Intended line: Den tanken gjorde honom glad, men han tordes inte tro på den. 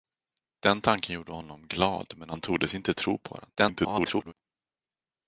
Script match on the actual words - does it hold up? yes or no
no